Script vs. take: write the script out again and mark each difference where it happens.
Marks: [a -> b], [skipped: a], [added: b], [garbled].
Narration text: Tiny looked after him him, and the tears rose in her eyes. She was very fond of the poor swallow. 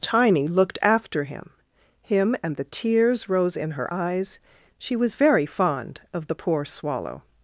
Tiny looked after him him, and the tears rose in her eyes. She was very fond of the poor swallow.